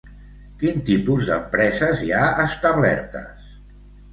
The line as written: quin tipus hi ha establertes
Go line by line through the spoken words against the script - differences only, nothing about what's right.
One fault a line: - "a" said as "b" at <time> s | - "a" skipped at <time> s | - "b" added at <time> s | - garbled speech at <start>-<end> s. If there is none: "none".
- "d'empreses" added at 1.3 s